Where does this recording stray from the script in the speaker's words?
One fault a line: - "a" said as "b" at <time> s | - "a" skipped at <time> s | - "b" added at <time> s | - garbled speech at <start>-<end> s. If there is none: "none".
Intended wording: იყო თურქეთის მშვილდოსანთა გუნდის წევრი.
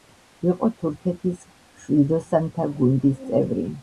none